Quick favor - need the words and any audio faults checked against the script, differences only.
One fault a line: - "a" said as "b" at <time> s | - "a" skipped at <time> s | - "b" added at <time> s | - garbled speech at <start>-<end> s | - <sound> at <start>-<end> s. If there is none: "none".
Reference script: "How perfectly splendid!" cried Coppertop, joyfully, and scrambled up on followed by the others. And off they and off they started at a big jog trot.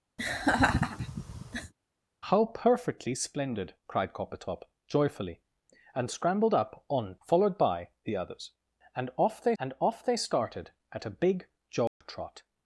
- laugh at 0.2-1.7 s
- dropout at 11.9-12.0 s